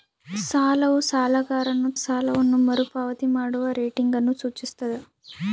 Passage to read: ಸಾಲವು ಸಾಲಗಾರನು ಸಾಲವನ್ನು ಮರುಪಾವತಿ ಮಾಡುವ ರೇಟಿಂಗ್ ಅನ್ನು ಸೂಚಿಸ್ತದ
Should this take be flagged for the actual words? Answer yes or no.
no